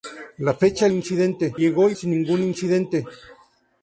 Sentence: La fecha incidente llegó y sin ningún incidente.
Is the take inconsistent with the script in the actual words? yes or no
no